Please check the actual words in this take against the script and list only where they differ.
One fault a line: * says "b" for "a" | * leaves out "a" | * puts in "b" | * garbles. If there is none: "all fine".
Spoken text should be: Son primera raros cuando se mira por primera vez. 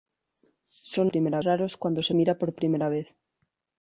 all fine